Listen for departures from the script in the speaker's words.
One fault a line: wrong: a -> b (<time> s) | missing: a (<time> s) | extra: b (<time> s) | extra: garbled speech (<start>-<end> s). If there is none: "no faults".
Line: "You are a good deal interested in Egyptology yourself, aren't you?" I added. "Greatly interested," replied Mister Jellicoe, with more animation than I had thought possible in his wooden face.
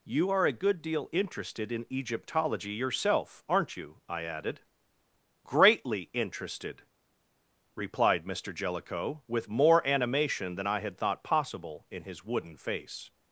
no faults